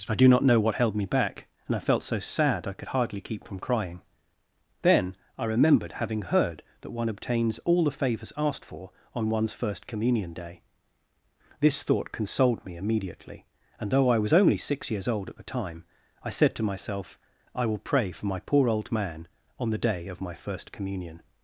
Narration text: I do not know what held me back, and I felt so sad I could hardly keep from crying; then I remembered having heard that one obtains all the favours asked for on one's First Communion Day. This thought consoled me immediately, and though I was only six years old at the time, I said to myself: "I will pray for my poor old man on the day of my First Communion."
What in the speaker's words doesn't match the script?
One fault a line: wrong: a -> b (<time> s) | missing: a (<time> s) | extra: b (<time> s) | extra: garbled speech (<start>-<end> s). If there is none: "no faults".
no faults